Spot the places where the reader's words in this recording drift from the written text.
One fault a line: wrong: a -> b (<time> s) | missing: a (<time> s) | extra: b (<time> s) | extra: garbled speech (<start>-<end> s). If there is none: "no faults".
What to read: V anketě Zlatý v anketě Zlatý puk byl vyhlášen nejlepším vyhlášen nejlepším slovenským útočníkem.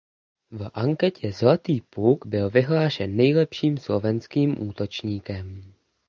missing: v anketě Zlatý (1.8 s)
missing: vyhlášen nejlepším (3.8 s)